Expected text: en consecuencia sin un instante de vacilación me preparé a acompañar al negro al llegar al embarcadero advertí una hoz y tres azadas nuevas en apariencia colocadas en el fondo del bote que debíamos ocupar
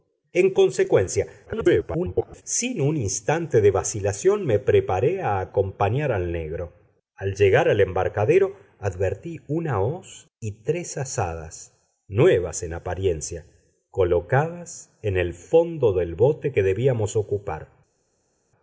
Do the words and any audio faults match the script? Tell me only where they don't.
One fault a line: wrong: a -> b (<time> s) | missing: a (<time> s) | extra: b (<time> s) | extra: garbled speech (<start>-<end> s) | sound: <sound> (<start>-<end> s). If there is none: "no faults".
extra: garbled speech (1.5-2.4 s)